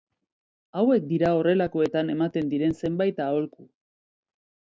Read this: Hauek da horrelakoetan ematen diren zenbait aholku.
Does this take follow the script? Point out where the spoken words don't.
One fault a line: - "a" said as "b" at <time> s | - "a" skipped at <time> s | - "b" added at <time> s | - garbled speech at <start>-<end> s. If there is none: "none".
- "da" said as "dira" at 1.1 s